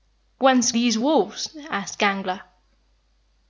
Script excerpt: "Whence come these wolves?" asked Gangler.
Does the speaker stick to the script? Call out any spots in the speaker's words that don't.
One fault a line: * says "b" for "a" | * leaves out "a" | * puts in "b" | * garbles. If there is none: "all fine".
* leaves out "come"